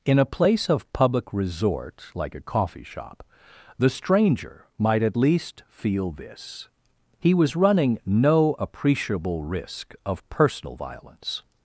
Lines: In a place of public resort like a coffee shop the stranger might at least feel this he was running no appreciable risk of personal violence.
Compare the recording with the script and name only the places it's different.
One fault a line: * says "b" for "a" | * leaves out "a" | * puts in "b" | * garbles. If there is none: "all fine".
all fine